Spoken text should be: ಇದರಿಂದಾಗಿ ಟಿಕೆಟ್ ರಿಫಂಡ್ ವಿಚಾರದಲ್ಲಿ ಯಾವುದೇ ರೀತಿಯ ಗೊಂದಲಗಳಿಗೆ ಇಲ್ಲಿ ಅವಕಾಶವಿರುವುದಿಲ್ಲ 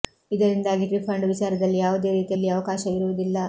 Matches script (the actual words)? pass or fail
fail